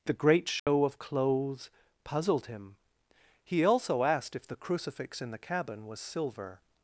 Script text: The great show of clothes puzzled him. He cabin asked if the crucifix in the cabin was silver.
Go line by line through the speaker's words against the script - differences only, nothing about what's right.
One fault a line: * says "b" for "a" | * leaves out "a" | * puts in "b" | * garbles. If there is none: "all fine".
* says "also" for "cabin"